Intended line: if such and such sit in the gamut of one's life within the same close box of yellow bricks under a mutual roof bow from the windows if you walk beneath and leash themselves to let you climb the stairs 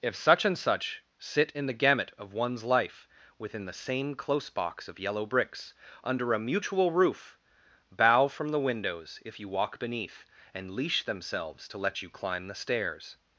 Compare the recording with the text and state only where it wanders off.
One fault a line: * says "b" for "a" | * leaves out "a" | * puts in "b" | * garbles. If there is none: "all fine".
all fine